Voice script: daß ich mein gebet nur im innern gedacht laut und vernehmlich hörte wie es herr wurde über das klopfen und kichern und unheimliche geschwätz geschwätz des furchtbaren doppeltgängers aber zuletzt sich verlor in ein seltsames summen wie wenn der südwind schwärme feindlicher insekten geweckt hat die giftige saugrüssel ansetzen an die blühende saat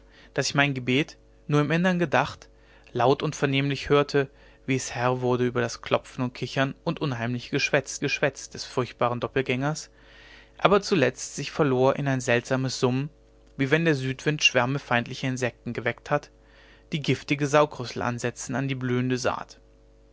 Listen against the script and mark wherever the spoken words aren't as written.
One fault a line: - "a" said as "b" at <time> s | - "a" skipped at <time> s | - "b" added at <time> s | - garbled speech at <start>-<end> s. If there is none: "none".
none